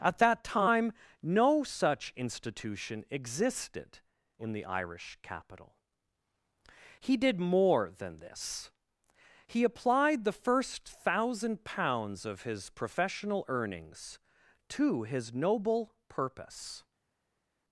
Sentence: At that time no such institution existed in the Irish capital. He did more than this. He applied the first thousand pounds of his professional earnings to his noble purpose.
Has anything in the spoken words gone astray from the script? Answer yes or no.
no